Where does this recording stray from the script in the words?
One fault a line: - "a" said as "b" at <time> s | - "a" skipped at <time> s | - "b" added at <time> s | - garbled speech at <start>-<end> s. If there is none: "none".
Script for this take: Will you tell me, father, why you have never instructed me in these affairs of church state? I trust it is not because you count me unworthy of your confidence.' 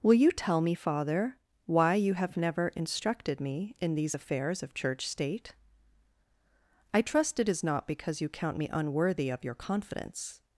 none